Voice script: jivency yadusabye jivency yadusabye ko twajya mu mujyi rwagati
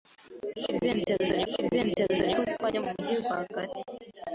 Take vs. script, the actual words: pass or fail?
pass